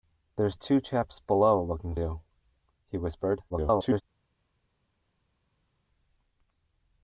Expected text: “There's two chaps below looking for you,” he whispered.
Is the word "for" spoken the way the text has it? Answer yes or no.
no